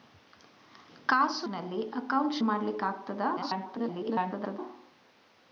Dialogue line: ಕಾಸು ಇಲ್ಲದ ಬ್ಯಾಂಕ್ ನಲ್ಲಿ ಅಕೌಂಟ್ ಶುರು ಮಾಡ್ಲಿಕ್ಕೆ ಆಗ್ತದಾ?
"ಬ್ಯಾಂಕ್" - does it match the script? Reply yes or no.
no